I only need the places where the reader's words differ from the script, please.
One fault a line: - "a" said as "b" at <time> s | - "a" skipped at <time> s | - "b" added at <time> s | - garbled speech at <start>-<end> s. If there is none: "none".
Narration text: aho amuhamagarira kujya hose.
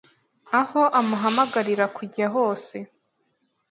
none